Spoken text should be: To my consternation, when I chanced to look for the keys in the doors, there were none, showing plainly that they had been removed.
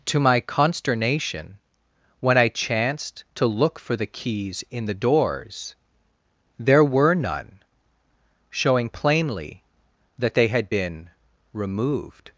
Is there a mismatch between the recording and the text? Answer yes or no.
no